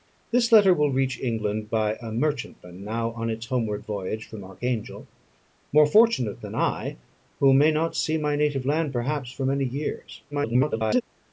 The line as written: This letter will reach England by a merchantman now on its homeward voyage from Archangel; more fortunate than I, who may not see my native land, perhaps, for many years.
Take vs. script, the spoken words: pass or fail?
fail